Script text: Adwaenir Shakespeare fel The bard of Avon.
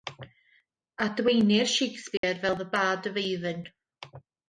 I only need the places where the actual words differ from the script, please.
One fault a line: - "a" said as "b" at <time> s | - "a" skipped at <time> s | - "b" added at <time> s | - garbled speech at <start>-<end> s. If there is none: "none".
none